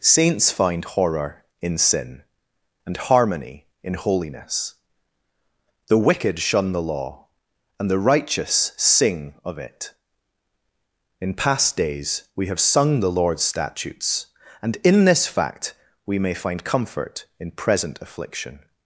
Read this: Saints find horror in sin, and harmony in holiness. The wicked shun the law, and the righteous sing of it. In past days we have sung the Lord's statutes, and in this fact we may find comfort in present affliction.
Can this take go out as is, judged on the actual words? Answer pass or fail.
pass